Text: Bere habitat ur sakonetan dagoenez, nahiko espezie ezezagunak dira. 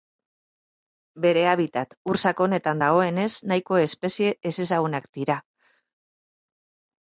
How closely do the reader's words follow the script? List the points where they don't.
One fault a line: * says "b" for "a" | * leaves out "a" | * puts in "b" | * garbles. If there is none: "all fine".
all fine